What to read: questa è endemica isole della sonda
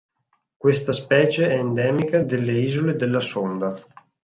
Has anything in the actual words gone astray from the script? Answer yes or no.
yes